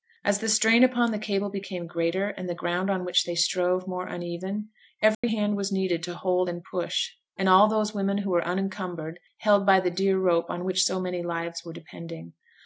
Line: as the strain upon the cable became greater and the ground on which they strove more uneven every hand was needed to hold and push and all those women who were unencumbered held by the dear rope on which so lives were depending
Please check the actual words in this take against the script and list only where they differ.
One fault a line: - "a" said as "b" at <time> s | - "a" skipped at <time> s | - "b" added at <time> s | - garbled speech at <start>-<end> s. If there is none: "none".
- "many" added at 11.0 s